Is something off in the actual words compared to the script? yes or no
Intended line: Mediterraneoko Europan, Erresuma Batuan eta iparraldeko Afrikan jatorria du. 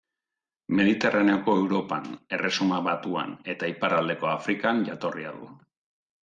no